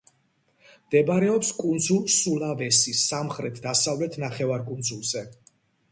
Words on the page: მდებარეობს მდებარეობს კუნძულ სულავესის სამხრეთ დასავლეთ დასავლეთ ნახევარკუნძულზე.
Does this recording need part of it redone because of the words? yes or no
yes